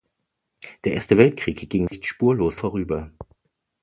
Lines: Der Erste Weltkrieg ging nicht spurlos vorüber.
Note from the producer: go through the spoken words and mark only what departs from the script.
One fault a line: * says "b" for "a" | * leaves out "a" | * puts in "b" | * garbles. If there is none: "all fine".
all fine